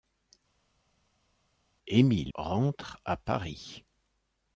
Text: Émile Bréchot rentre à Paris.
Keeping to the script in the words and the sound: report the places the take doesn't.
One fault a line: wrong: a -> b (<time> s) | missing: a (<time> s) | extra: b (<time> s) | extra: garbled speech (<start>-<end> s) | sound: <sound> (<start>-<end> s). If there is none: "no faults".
missing: Bréchot (2.3 s)